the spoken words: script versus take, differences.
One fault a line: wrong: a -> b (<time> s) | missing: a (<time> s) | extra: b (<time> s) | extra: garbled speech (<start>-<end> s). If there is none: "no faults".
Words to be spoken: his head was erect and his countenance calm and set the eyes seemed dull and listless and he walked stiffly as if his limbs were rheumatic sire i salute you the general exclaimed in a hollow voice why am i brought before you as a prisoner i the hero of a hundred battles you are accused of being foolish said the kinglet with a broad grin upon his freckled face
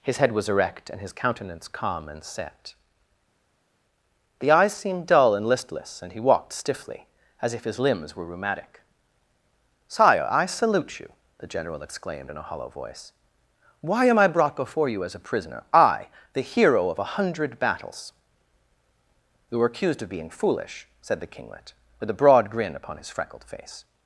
wrong: are -> were (19.6 s)